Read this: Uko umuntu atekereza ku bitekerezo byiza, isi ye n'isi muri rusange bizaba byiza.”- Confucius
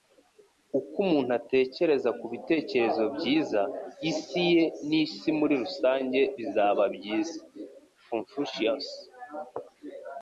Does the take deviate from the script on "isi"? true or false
false